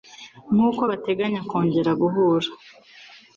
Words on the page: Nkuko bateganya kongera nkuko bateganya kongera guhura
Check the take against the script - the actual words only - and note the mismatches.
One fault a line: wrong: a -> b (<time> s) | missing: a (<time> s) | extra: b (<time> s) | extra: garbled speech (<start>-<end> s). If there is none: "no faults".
missing: nkuko bateganya kongera (1.9 s)